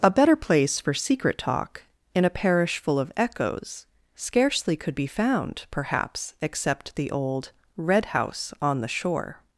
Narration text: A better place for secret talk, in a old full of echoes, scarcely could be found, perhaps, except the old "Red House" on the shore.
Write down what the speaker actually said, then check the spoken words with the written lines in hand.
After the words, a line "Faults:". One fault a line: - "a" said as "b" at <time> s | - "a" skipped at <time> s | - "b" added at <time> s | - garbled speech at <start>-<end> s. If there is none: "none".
A better place for secret talk, in a parish full of echoes, scarcely could be found, perhaps, except the old "Red House" on the shore.
Faults:
- "old" said as "parish" at 2.3 s